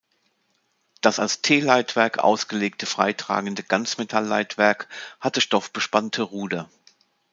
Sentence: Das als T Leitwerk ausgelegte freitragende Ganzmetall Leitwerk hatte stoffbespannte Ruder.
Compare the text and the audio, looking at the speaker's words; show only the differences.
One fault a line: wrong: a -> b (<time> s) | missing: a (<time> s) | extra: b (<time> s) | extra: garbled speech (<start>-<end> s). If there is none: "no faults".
no faults